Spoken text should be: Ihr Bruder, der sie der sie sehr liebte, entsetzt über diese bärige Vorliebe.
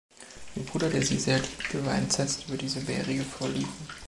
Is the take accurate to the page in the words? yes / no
no